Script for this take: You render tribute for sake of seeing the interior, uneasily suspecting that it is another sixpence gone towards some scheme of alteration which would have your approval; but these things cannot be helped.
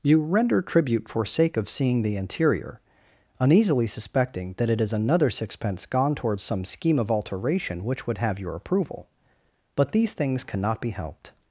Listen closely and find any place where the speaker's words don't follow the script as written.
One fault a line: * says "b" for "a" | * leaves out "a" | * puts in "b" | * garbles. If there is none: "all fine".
all fine